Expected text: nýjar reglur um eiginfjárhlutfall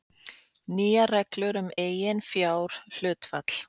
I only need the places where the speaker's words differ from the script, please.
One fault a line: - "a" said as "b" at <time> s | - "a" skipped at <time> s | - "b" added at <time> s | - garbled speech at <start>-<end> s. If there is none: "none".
none